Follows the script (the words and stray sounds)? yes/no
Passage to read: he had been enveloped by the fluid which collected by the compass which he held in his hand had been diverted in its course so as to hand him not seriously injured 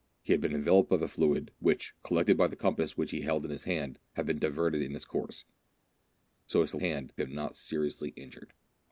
yes